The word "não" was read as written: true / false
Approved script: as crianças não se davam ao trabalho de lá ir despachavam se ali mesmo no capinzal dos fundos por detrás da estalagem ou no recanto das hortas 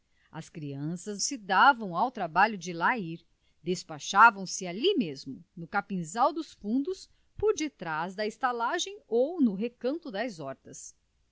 false